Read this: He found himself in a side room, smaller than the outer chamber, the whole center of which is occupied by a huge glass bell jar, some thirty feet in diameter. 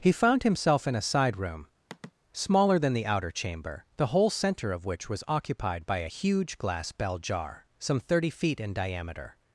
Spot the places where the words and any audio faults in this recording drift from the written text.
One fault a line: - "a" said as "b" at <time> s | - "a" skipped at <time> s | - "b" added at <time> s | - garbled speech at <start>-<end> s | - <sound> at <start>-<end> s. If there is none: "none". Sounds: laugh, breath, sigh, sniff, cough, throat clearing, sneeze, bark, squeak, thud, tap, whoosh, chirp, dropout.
- sigh at 1.9-2.1 s
- "is" said as "was" at 5.1 s